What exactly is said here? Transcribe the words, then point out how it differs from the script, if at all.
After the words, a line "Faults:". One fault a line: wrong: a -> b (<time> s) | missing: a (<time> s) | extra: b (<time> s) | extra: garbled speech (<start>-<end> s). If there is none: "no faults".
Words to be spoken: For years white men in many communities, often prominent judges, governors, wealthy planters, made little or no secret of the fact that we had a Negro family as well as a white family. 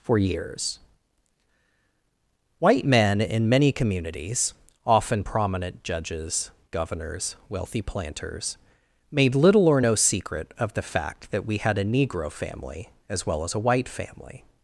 For years white men in many communities, often prominent judges, governors, wealthy planters, made little or no secret of the fact that we had a Negro family as well as a white family.
Faults:
no faults